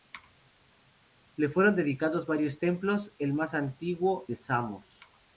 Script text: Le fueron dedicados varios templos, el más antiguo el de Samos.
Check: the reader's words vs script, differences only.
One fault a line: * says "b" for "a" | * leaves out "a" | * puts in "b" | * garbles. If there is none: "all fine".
* leaves out "el"